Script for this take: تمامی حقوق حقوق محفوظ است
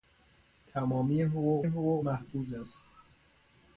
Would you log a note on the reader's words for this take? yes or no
no